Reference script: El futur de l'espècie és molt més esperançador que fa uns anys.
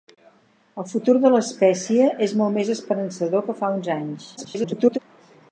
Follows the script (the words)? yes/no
no